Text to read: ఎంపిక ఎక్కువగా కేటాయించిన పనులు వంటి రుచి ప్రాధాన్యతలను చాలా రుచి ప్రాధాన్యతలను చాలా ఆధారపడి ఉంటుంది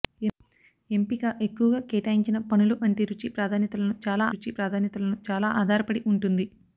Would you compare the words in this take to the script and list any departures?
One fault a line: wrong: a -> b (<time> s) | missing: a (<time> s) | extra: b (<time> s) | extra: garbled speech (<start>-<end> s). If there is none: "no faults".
no faults